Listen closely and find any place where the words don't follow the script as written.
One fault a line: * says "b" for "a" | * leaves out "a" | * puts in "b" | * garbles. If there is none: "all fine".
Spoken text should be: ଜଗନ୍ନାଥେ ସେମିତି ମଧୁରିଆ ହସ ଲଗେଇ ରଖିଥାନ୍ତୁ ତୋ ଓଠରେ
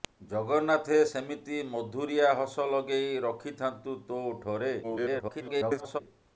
* garbles